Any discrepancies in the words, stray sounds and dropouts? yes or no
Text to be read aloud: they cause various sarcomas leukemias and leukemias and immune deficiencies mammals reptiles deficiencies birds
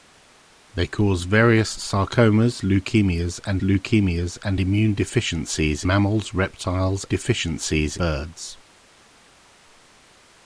no